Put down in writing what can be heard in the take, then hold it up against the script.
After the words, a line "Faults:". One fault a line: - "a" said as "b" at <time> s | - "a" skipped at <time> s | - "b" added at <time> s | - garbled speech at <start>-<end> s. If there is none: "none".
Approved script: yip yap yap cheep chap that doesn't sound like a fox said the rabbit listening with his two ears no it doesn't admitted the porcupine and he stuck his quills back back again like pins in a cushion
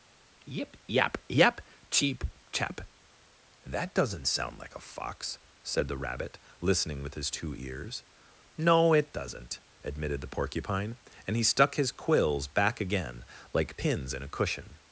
yip yap yap cheep chap that doesn't sound like a fox said the rabbit listening with his two ears no it doesn't admitted the porcupine and he stuck his quills back again like pins in a cushion
Faults:
- "back" skipped at 12.8 s